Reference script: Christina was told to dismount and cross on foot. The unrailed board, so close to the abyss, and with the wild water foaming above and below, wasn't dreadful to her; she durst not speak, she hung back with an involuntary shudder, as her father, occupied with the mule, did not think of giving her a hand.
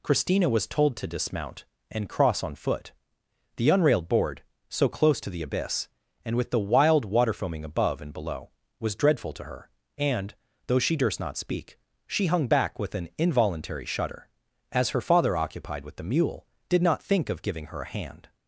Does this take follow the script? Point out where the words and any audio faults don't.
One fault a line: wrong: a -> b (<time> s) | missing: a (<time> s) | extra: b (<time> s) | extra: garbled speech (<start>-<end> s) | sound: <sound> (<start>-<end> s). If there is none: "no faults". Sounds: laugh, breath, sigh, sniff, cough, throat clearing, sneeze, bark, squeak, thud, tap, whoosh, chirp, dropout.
wrong: wasn't -> was (8.8 s)
extra: and though (10.0 s)